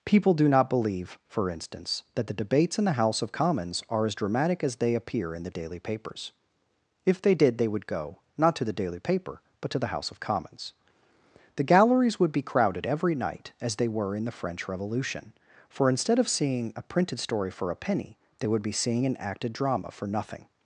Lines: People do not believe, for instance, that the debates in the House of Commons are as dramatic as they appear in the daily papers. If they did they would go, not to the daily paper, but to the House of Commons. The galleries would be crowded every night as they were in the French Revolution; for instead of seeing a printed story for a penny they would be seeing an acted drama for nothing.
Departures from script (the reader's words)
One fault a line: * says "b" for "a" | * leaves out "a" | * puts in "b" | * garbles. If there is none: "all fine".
all fine